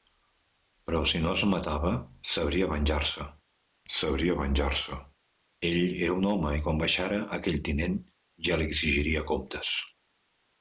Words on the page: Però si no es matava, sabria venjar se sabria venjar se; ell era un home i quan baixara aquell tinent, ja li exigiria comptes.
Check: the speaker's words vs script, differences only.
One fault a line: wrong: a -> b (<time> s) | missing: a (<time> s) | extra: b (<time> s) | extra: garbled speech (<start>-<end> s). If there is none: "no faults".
no faults